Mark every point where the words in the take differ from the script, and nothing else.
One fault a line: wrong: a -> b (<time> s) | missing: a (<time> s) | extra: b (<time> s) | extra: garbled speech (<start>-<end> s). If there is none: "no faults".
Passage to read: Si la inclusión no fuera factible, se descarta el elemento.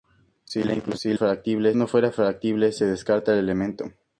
wrong: inclusión -> factible (1.1 s)